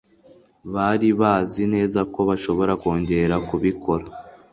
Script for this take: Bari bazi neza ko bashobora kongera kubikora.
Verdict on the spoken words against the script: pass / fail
pass